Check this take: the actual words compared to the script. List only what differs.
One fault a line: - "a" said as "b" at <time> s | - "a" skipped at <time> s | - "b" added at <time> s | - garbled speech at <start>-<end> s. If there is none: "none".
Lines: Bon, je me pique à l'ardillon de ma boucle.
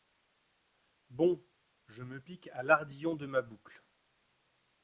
none